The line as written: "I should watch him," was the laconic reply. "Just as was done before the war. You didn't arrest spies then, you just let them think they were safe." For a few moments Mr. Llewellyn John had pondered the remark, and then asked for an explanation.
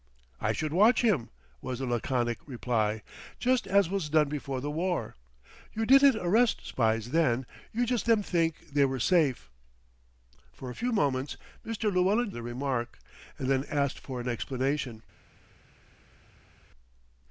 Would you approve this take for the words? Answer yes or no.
no